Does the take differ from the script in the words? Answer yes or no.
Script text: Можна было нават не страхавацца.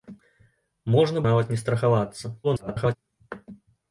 yes